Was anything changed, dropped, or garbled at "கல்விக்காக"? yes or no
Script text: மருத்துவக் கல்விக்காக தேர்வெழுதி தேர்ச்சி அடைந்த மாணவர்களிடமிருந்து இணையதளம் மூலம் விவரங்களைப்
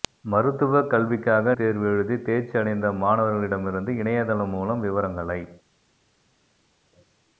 no